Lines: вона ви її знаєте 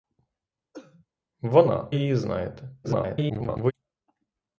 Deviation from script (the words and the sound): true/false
true